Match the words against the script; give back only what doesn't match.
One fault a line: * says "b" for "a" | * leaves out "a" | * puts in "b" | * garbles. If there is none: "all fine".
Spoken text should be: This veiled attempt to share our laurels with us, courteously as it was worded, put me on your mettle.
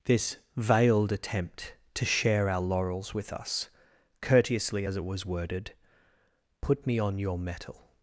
all fine